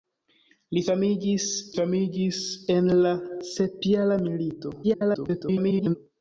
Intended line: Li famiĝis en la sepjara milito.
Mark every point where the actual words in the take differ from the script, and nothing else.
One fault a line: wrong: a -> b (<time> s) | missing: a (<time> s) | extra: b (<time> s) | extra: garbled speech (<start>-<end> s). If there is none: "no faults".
extra: famiĝis (1.8 s)
extra: garbled speech (4.8-6.0 s)